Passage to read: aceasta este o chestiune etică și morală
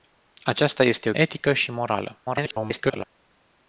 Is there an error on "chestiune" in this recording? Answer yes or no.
yes